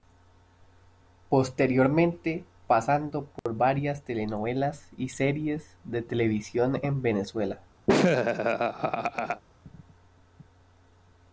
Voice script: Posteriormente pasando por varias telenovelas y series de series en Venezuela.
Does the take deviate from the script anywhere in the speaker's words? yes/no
yes